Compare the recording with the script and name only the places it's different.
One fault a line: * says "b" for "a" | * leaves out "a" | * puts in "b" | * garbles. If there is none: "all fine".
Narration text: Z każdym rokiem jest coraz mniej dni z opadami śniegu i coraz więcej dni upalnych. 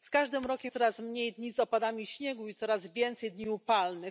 * leaves out "jest"